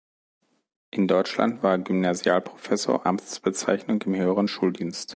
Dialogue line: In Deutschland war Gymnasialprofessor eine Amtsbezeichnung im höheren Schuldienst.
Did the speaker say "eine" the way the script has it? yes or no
no